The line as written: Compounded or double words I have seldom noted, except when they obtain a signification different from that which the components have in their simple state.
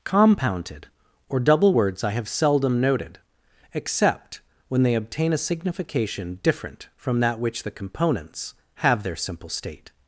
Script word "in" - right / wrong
wrong